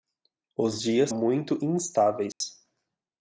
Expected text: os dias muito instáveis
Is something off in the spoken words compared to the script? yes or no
no